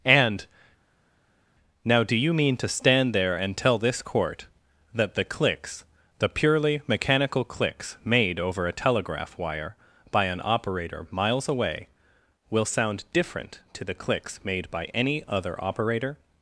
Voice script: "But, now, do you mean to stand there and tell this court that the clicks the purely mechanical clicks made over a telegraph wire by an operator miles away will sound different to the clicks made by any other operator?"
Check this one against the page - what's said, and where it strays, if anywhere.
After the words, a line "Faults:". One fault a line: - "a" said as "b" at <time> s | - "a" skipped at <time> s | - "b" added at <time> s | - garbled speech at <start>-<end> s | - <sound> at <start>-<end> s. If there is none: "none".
"And, now, do you mean to stand there and tell this court that the clicks the purely mechanical clicks made over a telegraph wire by an operator miles away will sound different to the clicks made by any other operator?"
Faults:
- "But" said as "And" at 0.1 s